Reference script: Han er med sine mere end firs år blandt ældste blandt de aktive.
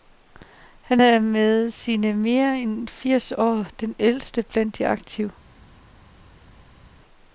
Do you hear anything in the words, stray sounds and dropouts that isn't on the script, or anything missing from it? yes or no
yes